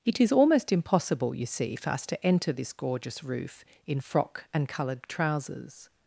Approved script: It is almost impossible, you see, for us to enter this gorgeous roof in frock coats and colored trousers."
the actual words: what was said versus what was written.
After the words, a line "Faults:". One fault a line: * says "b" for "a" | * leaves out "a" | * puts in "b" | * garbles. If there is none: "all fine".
It is almost impossible, you see, for us to enter this gorgeous roof in frock and colored trousers."
Faults:
* leaves out "coats"